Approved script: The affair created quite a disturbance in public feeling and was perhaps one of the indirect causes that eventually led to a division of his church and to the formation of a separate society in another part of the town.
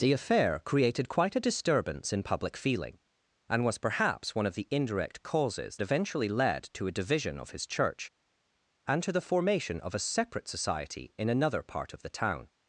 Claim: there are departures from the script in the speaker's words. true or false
true